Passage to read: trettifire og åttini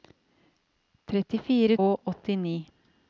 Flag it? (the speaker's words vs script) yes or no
no